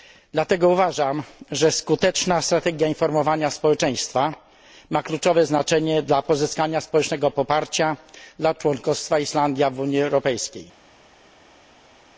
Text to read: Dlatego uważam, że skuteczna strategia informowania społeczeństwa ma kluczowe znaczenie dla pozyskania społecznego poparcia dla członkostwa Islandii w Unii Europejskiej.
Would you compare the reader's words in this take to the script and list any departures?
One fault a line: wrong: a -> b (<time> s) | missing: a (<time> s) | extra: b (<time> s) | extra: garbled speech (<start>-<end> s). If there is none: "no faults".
no faults